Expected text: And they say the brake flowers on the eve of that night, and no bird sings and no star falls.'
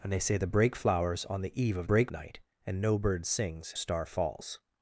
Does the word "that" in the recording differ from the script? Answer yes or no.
yes